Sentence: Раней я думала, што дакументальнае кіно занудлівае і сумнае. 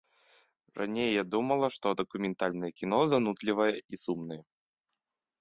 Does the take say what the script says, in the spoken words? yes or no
yes